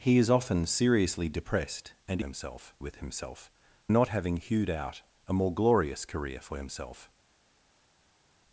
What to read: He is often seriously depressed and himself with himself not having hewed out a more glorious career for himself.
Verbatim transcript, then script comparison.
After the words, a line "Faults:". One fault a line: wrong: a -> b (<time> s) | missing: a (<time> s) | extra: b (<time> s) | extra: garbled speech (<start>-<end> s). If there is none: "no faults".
He is often seriously depressed and himself with himself not having hewed out a more glorious career for himself.
Faults:
no faults